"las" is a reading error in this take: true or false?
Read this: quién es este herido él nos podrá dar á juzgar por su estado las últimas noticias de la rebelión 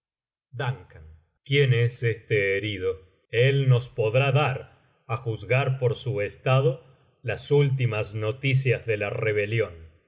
false